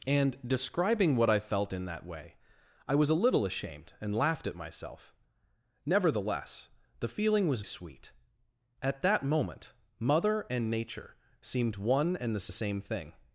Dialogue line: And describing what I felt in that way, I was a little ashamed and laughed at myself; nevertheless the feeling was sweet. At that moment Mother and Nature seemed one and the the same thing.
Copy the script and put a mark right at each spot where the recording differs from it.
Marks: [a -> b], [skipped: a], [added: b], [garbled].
And describing what I felt in that way, I was a little ashamed and laughed at myself; nevertheless the feeling was sweet. At that moment Mother and Nature seemed one and the the same thing.